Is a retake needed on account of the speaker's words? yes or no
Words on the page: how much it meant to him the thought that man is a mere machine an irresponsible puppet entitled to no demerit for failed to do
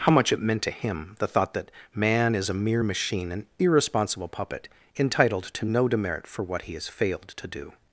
yes